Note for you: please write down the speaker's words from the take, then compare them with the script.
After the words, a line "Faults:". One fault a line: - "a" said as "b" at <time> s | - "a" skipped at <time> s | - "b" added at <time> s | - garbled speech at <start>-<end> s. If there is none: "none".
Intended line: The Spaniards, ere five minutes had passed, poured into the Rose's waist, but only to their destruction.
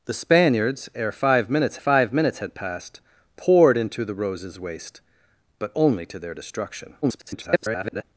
The Spaniards, ere five minutes five minutes had passed, poured into the Rose's waist, but only to their destruction. [garbled]
Faults:
- "five minutes" added at 1.8 s
- garbled speech at 7.0-8.0 s